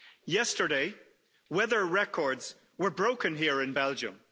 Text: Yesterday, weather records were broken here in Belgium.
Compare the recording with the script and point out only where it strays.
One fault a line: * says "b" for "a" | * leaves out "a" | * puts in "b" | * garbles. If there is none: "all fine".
all fine